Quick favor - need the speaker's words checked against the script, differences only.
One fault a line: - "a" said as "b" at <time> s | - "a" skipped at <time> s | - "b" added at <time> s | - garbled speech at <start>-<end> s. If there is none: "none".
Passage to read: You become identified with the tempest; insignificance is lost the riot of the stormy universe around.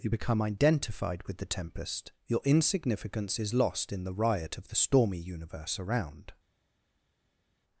- "your" added at 2.3 s
- "in" added at 3.9 s